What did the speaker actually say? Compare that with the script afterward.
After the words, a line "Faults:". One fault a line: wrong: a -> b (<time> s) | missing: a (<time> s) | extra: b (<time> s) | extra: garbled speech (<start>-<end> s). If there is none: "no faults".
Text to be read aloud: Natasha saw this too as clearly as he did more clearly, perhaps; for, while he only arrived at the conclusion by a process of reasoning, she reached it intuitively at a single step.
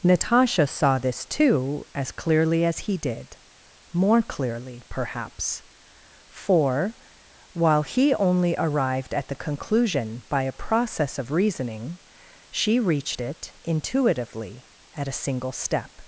Natasha saw this too as clearly as he did more clearly, perhaps; for, while he only arrived at the conclusion by a process of reasoning, she reached it intuitively at a single step.
Faults:
no faults